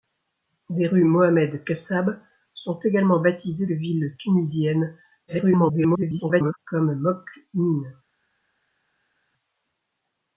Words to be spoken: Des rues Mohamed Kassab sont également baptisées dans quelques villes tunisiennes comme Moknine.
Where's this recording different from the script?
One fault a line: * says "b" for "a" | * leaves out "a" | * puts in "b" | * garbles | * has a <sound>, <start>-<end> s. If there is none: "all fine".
* leaves out "dans quelques"
* garbles